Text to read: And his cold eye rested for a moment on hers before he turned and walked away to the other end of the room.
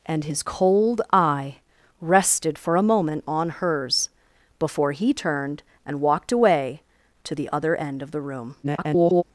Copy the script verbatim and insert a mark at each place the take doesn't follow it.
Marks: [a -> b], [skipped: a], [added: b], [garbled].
And his cold eye rested for a moment on hers before he turned and walked away to the other end of the room. [garbled]